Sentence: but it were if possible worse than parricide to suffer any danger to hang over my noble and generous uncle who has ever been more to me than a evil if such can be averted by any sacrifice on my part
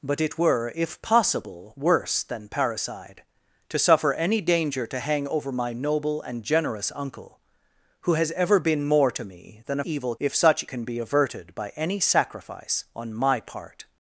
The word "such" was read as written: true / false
true